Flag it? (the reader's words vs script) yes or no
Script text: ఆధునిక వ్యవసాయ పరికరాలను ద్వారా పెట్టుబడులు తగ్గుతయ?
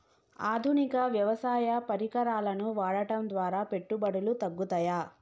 yes